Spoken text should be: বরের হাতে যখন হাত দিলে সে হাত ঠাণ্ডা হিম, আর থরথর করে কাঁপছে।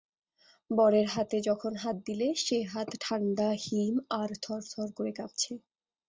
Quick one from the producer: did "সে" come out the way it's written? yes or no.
yes